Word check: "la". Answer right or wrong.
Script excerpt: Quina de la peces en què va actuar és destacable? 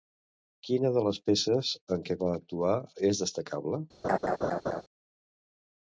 wrong